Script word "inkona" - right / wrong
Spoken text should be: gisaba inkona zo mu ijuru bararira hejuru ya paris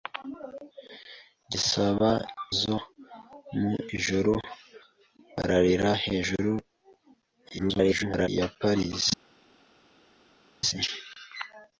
wrong